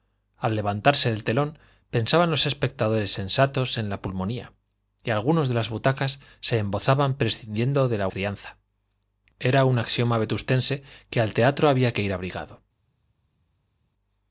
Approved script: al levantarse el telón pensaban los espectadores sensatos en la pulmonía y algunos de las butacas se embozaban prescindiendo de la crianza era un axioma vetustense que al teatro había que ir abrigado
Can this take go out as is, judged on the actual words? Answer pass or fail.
pass